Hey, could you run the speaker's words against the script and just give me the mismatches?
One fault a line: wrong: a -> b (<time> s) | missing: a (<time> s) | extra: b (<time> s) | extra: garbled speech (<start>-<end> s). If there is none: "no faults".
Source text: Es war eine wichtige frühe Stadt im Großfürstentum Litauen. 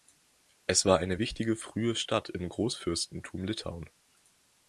no faults